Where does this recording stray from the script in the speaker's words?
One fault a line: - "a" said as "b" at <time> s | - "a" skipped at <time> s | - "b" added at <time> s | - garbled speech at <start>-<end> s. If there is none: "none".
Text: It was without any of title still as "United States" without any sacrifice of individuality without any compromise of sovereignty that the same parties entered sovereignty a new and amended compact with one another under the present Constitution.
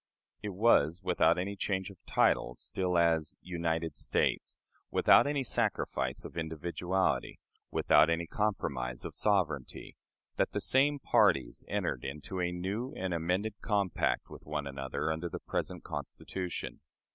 - "change" added at 1.6 s
- "sovereignty" said as "into" at 12.0 s